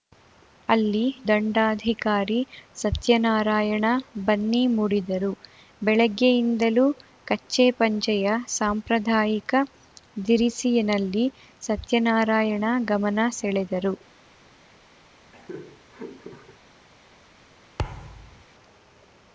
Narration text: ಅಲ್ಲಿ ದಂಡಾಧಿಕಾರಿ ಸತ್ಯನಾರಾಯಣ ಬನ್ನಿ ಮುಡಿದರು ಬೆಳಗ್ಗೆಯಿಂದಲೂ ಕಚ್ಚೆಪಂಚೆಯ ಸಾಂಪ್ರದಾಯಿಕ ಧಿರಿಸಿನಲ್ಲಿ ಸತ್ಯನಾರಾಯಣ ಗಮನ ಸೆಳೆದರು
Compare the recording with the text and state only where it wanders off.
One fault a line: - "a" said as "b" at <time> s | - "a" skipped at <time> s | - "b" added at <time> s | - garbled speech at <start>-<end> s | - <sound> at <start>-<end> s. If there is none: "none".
- laugh at 15.3-16.6 s
- thud at 17.8-18.4 s